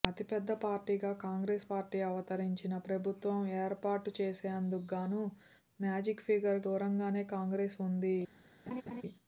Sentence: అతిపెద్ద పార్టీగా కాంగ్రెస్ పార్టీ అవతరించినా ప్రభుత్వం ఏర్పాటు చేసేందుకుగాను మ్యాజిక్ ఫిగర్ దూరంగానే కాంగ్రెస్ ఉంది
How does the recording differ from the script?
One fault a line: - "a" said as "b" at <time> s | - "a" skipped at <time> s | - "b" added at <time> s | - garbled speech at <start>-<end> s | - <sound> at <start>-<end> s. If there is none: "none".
- laugh at 8.7-9.0 s